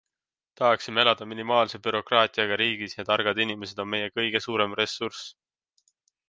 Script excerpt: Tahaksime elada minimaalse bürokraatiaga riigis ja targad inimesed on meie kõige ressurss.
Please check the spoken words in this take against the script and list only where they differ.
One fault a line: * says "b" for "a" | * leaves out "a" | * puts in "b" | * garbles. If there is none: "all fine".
* puts in "suurem"